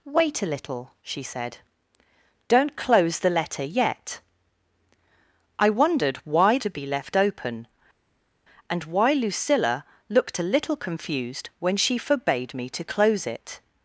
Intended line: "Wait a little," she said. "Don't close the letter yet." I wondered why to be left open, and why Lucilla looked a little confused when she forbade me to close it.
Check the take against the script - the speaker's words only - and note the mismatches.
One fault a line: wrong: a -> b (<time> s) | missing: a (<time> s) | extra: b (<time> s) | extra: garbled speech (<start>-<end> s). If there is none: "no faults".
no faults